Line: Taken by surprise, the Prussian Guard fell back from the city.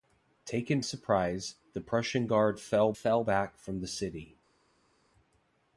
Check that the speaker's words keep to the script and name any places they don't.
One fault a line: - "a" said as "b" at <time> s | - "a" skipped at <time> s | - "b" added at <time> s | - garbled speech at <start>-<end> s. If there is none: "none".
- "by" skipped at 0.8 s
- "fell" added at 2.9 s